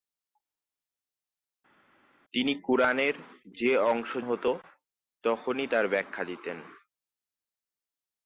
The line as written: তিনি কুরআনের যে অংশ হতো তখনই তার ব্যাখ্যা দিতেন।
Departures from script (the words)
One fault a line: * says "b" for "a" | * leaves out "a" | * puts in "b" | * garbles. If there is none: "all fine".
all fine